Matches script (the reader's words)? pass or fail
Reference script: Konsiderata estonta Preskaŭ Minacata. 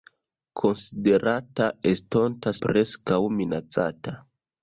pass